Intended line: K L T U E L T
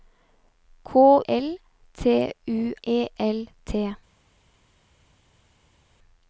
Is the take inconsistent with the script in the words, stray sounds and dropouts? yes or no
no